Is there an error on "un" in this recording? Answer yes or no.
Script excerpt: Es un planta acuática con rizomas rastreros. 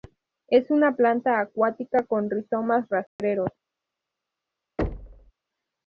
yes